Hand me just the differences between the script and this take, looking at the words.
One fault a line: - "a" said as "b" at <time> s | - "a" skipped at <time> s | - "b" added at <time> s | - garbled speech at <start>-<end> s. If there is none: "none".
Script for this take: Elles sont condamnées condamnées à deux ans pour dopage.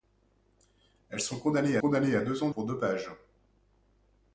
none